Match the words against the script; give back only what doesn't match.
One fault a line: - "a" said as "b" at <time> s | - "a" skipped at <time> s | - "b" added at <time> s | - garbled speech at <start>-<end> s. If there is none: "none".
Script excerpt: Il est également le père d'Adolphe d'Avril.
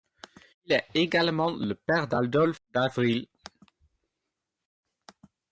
none